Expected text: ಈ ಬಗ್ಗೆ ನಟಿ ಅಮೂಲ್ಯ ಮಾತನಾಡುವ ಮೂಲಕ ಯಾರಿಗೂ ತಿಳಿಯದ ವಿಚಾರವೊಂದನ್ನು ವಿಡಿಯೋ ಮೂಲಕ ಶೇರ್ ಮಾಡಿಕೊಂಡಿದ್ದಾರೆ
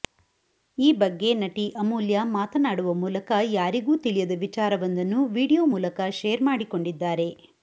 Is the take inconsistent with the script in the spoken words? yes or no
no